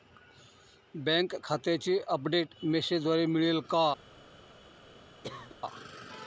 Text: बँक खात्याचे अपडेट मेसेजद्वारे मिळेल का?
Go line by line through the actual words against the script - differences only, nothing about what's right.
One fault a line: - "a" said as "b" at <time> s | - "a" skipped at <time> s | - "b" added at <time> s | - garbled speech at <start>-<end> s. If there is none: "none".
none